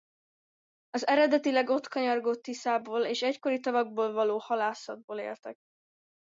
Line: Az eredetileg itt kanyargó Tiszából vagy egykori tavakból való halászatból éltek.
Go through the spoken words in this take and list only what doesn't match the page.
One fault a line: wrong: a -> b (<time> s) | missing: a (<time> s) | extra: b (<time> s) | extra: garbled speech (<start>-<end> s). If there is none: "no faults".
wrong: itt -> ott (1.7 s)
wrong: vagy -> és (3.0 s)